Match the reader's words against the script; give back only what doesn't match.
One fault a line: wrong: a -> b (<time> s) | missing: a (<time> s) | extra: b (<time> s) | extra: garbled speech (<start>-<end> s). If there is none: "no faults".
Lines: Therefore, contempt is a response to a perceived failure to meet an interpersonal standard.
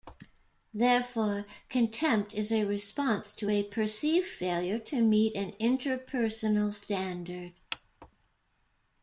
no faults